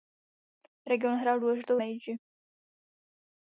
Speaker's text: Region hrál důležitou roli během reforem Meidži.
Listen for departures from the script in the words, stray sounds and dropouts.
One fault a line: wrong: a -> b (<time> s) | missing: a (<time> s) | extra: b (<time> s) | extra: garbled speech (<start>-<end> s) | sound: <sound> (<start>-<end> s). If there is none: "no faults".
missing: roli během reforem (1.8 s)